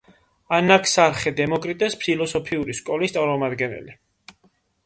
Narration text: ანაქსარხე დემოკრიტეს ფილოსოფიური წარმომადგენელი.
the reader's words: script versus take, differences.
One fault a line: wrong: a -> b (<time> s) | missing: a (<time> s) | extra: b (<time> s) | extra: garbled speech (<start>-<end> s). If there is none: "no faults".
extra: სკოლის (2.8 s)